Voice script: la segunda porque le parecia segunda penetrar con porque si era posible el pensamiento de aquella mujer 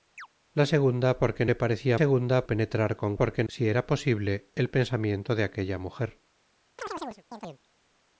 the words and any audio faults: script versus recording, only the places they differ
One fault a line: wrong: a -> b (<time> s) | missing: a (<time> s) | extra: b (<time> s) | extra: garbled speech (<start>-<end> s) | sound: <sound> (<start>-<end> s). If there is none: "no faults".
sound: chirp (0.2-0.3 s)
sound: chirp (6.8-7.6 s)